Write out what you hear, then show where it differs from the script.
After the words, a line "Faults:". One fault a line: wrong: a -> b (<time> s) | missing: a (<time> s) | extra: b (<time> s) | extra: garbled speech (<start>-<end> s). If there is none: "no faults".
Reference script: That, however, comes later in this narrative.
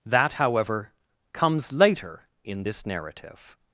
That, however, comes later in this narrative.
Faults:
no faults